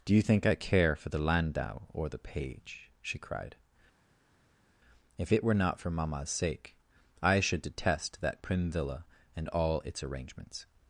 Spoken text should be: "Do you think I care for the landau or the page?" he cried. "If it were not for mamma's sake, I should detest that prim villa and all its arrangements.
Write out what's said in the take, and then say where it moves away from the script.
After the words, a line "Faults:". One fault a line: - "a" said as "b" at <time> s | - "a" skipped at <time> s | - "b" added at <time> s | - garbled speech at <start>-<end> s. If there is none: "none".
"Do you think I care for the landau or the page?" she cried. "If it were not for mamma's sake, I should detest that prim villa and all its arrangements.
Faults:
- "he" said as "she" at 3.0 s